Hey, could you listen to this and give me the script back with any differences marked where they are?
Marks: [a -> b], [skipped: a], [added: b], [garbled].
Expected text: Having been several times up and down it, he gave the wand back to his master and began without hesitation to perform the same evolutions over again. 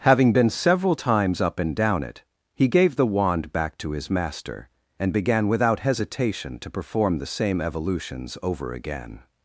Having been several times up and down it, he gave the wand back to his master and began without hesitation to perform the same evolutions over again.